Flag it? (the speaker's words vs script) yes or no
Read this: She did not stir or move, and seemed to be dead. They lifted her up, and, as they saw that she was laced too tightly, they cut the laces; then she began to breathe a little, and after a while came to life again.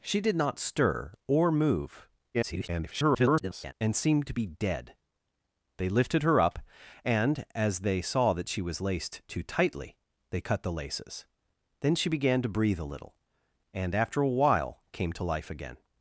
yes